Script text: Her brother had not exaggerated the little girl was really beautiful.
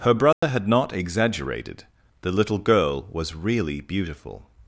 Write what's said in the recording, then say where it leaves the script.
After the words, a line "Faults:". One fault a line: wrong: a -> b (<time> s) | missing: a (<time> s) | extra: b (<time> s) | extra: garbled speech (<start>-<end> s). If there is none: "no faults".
Her brother had not exaggerated the little girl was really beautiful.
Faults:
no faults